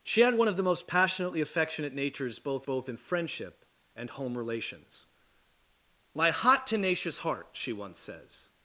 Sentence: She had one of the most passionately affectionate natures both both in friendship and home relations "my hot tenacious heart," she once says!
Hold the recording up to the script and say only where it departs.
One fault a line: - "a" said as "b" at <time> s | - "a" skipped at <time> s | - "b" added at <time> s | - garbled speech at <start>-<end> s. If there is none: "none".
none